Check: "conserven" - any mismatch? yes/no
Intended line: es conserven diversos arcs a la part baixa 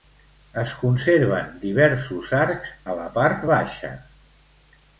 no